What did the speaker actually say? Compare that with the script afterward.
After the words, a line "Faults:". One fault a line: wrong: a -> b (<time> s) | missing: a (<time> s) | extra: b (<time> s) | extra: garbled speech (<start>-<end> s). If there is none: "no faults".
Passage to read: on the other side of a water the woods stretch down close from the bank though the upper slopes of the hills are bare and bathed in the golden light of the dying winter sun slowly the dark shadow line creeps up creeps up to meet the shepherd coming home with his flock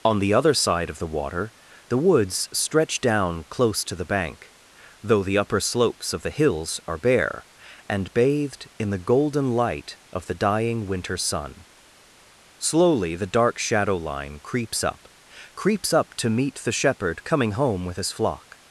on the other side of the water the woods stretch down close to the bank though the upper slopes of the hills are bare and bathed in the golden light of the dying winter sun slowly the dark shadow line creeps up creeps up to meet the shepherd coming home with his flock
Faults:
wrong: a -> the (1.0 s)
wrong: from -> to (3.9 s)